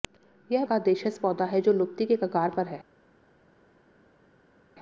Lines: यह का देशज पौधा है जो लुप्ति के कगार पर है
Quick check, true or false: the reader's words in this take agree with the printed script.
true